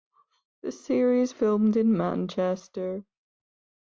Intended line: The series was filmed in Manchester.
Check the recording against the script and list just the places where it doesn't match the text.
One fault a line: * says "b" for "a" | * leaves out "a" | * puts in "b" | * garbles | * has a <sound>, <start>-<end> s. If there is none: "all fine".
* leaves out "was"